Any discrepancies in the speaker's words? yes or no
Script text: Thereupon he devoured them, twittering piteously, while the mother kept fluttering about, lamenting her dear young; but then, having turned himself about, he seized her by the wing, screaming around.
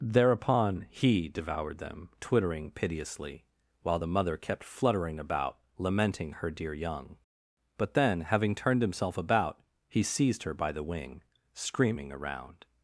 no